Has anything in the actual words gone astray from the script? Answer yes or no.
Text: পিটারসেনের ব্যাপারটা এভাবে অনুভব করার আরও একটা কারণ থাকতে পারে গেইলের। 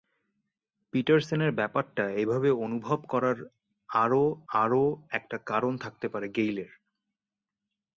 yes